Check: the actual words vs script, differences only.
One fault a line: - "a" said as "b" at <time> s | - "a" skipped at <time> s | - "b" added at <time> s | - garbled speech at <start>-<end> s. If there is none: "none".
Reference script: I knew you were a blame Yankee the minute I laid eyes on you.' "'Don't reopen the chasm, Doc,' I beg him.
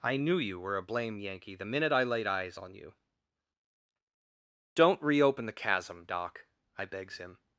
- "beg" said as "begs" at 6.9 s